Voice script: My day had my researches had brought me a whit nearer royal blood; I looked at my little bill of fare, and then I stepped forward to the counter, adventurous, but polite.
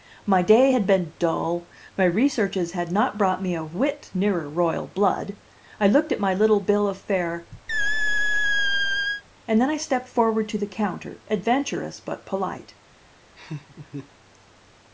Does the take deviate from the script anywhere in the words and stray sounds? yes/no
yes